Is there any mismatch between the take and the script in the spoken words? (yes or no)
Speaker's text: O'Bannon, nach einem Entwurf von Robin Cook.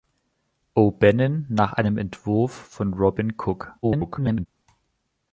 yes